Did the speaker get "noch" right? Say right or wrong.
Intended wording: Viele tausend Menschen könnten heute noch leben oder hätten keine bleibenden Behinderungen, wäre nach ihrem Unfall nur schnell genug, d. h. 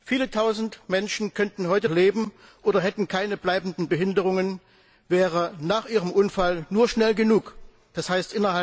wrong